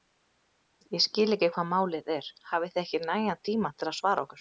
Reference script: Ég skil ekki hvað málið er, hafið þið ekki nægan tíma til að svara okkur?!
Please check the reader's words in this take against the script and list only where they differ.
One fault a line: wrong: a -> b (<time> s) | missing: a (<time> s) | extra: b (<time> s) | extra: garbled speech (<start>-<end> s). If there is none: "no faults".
no faults